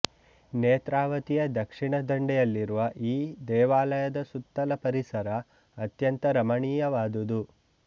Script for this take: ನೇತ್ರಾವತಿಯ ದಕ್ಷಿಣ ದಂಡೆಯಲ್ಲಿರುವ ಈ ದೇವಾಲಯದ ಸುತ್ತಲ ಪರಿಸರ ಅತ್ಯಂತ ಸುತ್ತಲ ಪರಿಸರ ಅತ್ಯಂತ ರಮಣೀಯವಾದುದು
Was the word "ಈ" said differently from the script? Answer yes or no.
no